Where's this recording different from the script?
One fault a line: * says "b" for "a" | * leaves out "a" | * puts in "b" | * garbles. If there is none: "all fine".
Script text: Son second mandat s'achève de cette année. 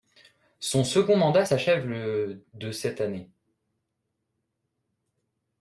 * puts in "le"